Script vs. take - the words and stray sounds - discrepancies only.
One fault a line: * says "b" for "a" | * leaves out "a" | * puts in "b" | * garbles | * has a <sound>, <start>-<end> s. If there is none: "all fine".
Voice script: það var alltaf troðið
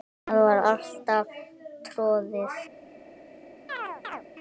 * has a chirp, 3.7-4.2 s